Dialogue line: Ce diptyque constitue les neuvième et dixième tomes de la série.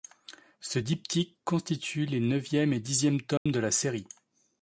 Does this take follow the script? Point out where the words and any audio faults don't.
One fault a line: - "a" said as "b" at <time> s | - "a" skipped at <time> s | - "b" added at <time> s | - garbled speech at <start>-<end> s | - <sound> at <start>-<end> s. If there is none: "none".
- dropout at 3.4-3.5 s